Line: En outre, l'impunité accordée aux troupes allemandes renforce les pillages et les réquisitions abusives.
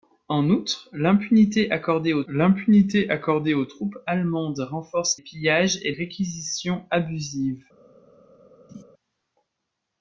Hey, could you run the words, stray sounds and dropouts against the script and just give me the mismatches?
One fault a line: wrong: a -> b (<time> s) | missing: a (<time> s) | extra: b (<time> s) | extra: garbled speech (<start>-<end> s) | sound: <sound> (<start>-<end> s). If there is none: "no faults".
extra: l'impunité accordée aux (2.3 s)
missing: les (5.2 s)
missing: les (5.9 s)
sound: laugh (8.7-8.8 s)